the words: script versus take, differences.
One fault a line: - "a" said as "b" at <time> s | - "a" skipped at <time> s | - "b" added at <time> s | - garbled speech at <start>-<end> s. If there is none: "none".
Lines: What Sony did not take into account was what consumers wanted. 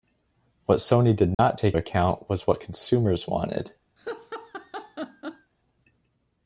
- "into" skipped at 1.8 s